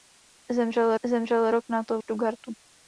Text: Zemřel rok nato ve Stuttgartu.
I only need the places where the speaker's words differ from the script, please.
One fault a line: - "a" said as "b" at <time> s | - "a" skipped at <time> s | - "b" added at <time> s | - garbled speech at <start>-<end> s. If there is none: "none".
- "zemřel" added at 1.1 s
- "ve" skipped at 2.0 s